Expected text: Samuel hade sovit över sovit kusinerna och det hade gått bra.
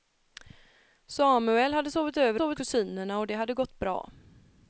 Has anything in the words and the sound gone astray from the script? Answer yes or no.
no